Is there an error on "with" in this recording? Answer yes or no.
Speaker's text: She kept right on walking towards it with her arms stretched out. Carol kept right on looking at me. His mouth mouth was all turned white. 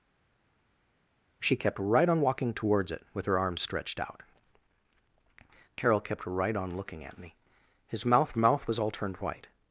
no